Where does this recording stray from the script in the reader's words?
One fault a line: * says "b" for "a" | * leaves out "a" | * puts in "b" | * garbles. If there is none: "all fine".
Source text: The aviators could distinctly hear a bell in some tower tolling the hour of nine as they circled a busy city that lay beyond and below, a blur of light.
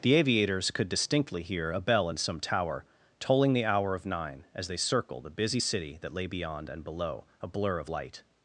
all fine